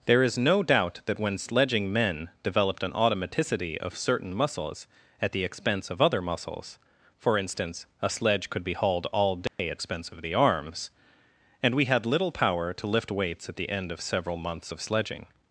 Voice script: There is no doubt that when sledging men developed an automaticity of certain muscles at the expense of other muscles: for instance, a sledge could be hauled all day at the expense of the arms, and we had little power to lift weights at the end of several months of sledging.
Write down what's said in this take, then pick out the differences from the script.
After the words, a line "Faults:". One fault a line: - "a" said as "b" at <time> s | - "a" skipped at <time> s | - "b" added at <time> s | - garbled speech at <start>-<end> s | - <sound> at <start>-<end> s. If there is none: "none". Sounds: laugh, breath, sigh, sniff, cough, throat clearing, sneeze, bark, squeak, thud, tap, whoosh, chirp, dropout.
There is no doubt that when sledging men developed an automaticity of certain muscles at the expense of other muscles: for instance, a sledge could be hauled all day at expense of the arms, and we had little power to lift weights at the end of several months of sledging.
Faults:
- dropout at 9.5-9.6 s
- "the" skipped at 9.8 s